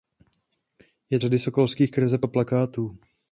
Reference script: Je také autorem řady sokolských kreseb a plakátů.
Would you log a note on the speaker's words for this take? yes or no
yes